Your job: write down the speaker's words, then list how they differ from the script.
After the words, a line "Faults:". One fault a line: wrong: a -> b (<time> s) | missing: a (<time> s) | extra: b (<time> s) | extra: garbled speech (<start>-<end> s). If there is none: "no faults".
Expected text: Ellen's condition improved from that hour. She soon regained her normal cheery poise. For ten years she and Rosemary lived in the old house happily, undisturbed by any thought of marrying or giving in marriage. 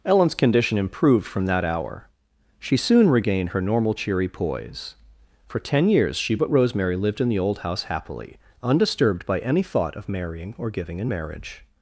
Ellen's condition improved from that hour. She soon regained her normal cheery poise. For ten years she but Rosemary lived in the old house happily, undisturbed by any thought of marrying or giving in marriage.
Faults:
wrong: and -> but (6.3 s)